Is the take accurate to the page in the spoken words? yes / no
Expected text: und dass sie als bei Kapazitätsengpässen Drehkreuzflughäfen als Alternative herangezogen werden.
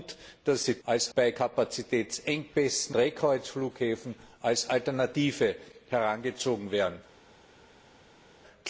yes